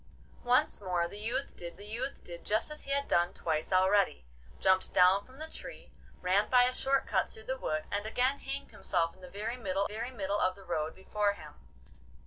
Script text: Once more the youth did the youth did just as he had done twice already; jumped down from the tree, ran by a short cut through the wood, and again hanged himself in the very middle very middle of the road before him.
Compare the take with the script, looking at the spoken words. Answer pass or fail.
pass